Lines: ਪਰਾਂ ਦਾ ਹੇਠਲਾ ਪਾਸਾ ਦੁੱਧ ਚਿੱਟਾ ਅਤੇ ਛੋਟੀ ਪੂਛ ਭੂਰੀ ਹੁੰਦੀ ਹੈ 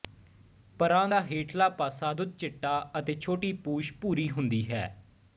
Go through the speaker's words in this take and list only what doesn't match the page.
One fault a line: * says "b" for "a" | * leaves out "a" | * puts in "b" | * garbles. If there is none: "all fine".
all fine